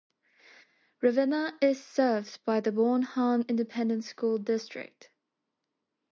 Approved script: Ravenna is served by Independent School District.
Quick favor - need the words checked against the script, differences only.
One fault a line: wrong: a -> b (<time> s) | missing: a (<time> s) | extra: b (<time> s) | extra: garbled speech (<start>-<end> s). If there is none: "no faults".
extra: the Bonham (2.6 s)